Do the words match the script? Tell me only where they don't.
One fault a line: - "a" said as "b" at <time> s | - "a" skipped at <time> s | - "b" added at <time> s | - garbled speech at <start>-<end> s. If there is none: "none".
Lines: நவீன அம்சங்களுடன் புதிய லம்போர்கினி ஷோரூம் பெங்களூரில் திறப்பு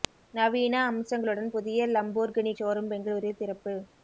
none